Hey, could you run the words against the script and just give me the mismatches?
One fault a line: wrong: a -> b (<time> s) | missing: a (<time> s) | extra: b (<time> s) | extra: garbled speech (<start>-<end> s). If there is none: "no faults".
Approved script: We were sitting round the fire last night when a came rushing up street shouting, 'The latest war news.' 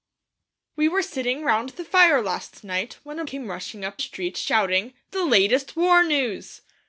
no faults